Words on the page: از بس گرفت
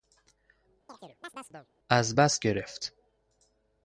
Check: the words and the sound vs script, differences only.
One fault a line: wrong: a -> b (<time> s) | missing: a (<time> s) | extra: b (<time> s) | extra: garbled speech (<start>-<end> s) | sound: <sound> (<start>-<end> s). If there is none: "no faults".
sound: chirp (0.9-1.7 s)